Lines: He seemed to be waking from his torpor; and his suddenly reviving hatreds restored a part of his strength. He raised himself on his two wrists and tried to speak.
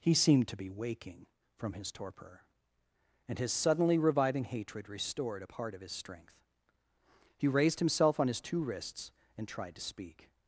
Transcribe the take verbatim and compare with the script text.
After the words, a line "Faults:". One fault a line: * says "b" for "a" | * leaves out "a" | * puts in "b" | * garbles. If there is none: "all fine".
He seemed to be waking from his torpor; and his suddenly reviving hatred restored a part of his strength. He raised himself on his two wrists and tried to speak.
Faults:
* says "hatred" for "hatreds"